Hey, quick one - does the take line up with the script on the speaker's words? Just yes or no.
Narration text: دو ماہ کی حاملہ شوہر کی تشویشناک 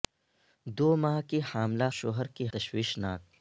yes